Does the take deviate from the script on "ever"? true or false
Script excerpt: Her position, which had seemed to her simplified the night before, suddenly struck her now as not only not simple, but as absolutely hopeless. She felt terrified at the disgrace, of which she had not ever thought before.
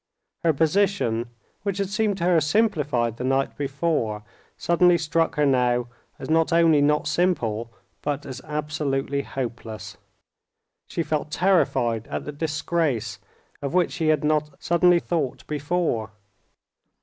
true